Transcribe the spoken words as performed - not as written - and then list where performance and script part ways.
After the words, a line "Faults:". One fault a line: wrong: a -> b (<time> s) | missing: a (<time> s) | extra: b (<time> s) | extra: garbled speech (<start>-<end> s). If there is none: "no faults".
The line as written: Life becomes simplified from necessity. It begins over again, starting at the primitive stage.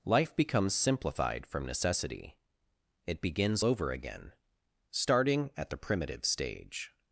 Life becomes simplified from necessity. It begins over again, starting at the primitive stage.
Faults:
no faults